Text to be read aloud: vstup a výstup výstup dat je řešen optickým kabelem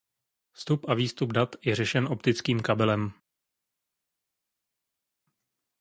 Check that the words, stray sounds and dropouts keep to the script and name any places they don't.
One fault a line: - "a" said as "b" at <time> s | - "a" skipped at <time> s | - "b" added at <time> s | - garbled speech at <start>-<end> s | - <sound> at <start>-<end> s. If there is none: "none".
- "výstup" skipped at 1.3 s